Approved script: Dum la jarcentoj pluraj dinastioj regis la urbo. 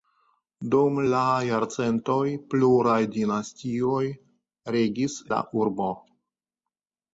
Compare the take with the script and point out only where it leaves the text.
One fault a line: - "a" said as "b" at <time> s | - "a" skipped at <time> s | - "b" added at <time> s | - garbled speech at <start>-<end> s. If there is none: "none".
none